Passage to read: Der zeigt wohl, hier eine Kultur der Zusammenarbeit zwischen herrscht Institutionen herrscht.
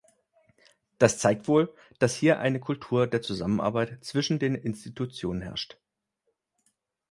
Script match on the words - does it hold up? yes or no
no